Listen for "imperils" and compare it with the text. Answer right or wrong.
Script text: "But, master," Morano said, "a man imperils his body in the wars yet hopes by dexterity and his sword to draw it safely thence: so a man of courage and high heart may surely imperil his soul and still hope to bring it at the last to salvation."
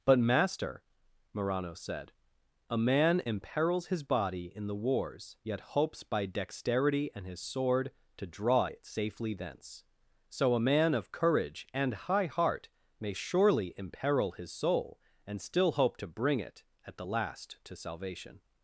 right